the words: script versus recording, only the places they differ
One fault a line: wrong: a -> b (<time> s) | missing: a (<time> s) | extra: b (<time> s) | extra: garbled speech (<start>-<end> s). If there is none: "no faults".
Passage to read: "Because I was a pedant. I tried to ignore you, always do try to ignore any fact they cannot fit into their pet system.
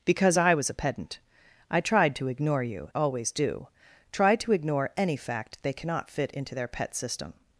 no faults